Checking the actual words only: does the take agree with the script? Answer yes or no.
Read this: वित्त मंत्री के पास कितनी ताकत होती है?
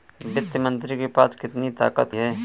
no